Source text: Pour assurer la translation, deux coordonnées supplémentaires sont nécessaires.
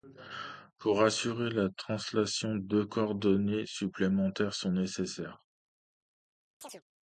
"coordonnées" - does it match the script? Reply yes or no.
yes